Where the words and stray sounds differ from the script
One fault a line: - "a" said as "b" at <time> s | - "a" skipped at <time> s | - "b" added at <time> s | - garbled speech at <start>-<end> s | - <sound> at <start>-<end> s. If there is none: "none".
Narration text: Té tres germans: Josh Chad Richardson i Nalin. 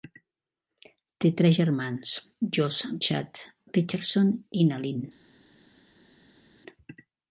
none